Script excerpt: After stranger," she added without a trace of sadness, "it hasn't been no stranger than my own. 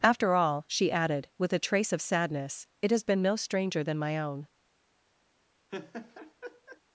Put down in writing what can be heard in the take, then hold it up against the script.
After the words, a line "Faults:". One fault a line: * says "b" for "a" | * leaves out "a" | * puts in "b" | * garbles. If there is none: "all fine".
After all," she added with a trace of sadness, "it has been no stranger than my own.
Faults:
* says "all" for "stranger"
* says "with" for "without"
* says "has" for "hasn't"